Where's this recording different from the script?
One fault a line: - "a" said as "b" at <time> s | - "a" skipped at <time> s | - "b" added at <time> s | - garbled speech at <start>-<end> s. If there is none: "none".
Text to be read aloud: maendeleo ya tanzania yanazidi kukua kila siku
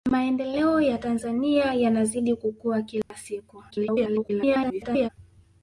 - garbled speech at 3.7-5.1 s